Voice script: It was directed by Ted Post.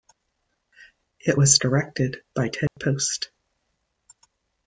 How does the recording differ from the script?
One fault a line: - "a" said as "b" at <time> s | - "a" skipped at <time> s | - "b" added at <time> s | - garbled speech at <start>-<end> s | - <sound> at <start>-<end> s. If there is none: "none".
- dropout at 2.7-2.8 s